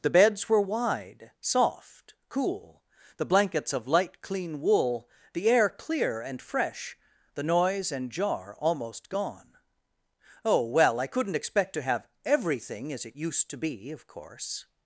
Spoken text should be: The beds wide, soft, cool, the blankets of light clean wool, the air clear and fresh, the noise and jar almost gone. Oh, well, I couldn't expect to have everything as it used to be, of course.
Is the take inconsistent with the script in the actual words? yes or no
yes